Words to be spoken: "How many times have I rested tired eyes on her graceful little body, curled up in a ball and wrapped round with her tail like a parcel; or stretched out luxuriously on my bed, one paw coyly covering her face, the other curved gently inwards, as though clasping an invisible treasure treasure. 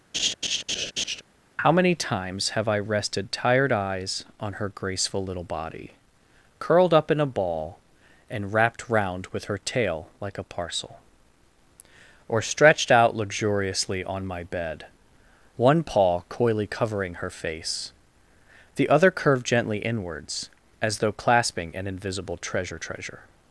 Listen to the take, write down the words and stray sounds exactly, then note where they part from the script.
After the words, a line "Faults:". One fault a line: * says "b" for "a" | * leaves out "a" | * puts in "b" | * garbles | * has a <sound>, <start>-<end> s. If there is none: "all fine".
"How many times have I rested tired eyes on her graceful little body, curled up in a ball and wrapped round with her tail like a parcel; or stretched out luxuriously on my bed, one paw coyly covering her face, the other curved gently inwards, as though clasping an invisible treasure treasure.
Faults:
* has a laugh, 0.1-1.2 s